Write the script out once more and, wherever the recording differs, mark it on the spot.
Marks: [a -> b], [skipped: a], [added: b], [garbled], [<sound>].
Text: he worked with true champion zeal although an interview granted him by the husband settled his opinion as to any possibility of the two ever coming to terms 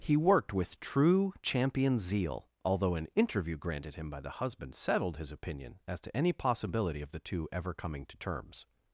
he worked with true champion zeal although an interview granted him by the husband settled his opinion as to any possibility of the two ever coming to terms